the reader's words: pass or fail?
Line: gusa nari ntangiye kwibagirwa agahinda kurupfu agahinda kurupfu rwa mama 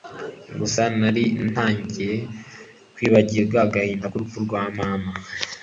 fail